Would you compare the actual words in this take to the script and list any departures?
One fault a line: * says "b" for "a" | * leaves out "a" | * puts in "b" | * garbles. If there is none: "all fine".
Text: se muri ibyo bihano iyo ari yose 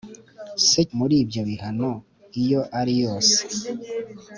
all fine